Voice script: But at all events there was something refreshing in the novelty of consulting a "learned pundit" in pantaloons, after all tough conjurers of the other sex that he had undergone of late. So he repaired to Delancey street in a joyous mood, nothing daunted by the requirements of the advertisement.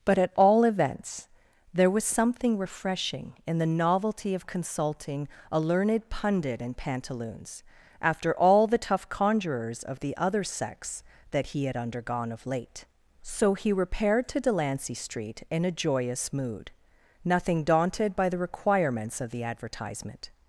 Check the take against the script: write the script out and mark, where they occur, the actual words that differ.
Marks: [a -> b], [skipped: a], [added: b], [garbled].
But at all events there was something refreshing in the novelty of consulting a "learned pundit" in pantaloons, after all [added: the] tough conjurers of the other sex that he had undergone of late. So he repaired to Delancey street in a joyous mood, nothing daunted by the requirements of the advertisement.